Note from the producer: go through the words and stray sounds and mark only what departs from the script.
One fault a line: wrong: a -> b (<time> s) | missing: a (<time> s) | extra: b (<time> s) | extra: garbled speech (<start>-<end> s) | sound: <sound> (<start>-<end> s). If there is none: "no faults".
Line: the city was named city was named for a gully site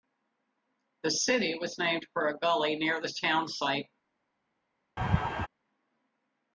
wrong: city was named for a gully -> for a gully near the town (2.1 s)
sound: laugh (5.0-5.5 s)